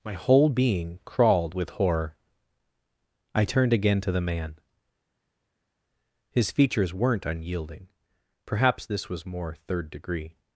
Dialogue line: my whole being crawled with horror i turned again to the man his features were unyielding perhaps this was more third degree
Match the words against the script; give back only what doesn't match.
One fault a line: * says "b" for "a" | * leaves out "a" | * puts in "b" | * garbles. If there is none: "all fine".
* says "weren't" for "were"